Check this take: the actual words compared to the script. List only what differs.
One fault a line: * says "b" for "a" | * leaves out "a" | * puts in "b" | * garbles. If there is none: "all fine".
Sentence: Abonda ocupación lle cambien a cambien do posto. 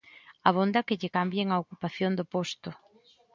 * says "que" for "ocupación"
* says "ocupación" for "cambien"